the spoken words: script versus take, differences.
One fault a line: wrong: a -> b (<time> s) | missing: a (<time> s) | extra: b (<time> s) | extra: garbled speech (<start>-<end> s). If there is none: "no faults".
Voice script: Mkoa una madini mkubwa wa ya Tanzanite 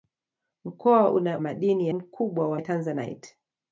no faults